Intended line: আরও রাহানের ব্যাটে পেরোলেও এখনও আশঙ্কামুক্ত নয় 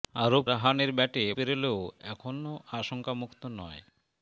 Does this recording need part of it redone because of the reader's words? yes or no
no